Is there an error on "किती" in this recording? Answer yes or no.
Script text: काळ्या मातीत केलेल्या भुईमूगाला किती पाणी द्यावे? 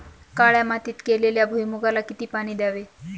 no